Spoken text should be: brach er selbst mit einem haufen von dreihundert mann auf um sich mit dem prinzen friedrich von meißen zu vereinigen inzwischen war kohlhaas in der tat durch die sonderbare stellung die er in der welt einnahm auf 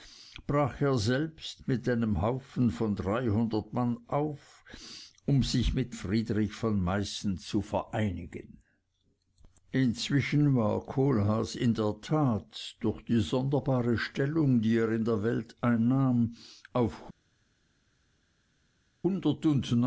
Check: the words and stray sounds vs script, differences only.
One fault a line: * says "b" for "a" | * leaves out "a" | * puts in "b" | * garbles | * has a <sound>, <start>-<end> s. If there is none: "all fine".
* leaves out "dem prinzen"